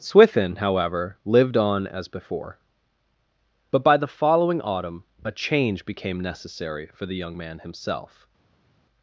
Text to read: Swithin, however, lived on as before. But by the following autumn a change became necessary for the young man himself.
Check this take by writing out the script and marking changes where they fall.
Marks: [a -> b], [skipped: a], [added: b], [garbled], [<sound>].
Swithin, however, lived on as before. But by the following autumn a change became necessary for the young man himself.